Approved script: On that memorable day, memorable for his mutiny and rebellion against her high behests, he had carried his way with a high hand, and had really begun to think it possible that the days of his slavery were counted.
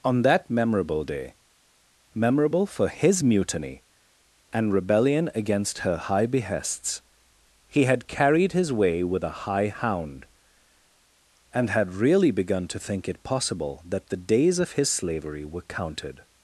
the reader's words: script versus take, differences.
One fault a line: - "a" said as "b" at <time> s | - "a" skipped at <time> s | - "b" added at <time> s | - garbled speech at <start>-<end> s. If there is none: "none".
- "hand" said as "hound" at 9.7 s